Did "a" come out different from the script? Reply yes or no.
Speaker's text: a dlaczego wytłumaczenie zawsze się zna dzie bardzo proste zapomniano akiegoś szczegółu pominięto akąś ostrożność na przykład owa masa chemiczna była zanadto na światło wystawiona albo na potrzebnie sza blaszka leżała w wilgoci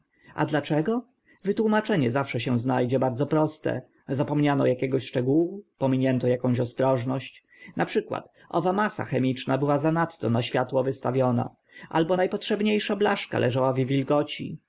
no